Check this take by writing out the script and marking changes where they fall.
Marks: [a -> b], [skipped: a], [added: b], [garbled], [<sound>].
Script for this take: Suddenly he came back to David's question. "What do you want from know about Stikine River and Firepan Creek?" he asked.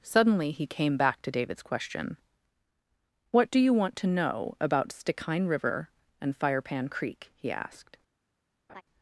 Suddenly he came back to David's question. "What do you want [from -> to] know about Stikine River and Firepan Creek?" he asked. [laugh]